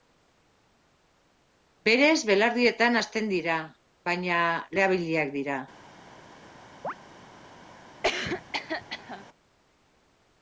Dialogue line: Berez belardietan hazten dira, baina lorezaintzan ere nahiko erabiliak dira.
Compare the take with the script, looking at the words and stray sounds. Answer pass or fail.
fail